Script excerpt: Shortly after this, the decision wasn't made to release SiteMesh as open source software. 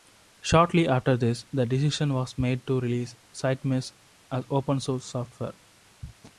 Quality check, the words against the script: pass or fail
fail